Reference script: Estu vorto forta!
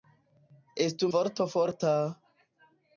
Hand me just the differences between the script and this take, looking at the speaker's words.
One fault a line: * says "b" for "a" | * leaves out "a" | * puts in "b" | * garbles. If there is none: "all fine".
all fine